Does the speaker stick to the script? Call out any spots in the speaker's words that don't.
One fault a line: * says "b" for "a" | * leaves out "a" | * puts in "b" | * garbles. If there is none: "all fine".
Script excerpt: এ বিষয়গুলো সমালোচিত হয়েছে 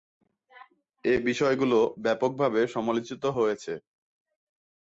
* puts in "ব্যাপকভাবে"